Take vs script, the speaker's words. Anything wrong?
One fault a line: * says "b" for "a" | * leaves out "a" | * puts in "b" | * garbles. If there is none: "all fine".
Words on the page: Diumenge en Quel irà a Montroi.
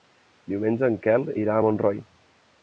all fine